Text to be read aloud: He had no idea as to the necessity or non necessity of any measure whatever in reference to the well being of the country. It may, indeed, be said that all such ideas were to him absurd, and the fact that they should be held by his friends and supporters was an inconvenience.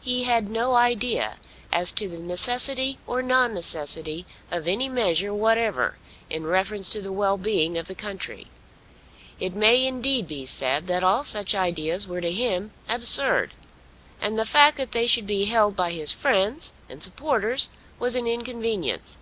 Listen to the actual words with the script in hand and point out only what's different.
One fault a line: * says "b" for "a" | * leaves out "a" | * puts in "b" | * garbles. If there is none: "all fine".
all fine